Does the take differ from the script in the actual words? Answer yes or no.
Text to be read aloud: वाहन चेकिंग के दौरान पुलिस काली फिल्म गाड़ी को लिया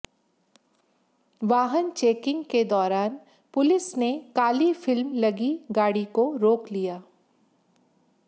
yes